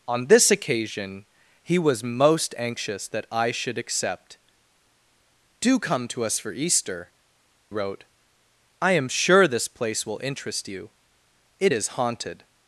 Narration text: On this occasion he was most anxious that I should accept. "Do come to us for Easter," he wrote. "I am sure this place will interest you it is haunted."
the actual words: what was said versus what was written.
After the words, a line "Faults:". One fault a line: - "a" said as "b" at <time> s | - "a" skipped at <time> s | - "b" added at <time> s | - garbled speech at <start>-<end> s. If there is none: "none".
On this occasion he was most anxious that I should accept. "Do come to us for Easter," wrote. "I am sure this place will interest you it is haunted."
Faults:
- "he" skipped at 7.1 s